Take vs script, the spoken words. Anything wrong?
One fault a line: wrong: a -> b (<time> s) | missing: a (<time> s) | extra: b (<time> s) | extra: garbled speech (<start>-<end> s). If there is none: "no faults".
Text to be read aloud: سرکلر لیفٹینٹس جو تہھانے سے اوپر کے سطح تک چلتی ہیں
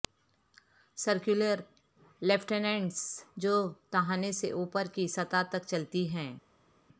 wrong: کے -> کی (4.9 s)